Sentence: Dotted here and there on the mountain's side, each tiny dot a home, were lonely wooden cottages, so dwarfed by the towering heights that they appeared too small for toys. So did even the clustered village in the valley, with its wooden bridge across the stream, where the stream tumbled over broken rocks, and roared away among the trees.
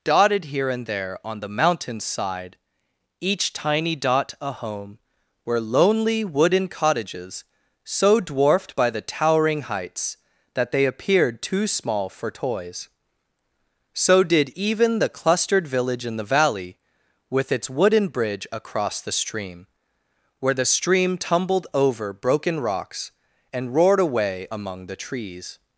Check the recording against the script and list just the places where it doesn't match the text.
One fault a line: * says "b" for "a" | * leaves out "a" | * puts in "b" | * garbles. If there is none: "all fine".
all fine